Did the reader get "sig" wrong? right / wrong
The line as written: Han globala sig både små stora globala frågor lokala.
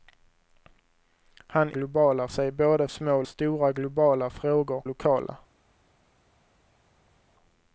right